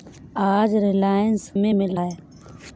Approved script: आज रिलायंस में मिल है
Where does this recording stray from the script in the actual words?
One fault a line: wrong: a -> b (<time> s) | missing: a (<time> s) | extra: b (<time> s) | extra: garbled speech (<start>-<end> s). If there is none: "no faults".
no faults